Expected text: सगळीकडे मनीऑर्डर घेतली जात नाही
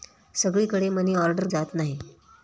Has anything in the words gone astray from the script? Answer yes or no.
yes